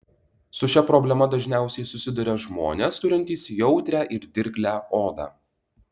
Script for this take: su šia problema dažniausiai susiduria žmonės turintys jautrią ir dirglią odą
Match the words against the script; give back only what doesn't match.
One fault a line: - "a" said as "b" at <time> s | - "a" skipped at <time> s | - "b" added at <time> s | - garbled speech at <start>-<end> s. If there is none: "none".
none